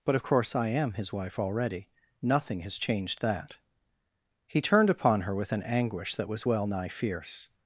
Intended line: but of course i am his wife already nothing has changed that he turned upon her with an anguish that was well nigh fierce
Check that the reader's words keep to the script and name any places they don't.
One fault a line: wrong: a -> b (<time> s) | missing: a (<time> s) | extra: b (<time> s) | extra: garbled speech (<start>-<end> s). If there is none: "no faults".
no faults